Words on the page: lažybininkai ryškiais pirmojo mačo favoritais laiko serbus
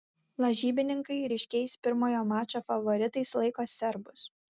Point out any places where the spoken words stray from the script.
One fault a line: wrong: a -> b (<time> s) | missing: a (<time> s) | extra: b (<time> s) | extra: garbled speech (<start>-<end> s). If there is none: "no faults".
no faults